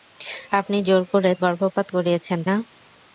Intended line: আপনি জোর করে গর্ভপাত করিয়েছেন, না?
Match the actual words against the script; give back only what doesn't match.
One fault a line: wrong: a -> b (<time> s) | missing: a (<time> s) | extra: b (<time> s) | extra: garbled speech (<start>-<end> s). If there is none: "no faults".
no faults